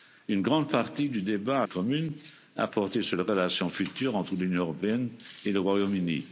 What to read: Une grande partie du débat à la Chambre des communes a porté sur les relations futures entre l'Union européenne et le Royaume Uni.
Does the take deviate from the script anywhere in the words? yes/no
yes